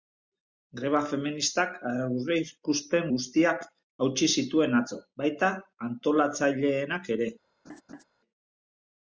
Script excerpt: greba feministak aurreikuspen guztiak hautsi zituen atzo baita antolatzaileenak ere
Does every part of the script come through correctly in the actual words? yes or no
yes